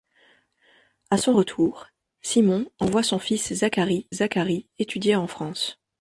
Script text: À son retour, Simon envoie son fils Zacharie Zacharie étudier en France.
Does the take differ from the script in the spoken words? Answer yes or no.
no